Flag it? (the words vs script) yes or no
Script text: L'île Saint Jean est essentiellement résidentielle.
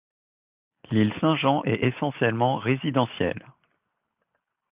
no